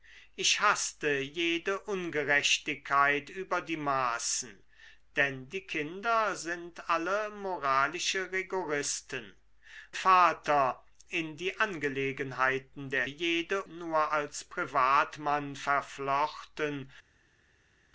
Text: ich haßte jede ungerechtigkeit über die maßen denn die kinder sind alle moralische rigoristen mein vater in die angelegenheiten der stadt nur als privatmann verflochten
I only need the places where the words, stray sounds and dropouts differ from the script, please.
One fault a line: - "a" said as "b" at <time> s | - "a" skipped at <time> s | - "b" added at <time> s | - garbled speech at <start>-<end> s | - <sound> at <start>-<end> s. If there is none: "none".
- "mein" skipped at 9.3 s
- "stadt" said as "jede" at 13.0 s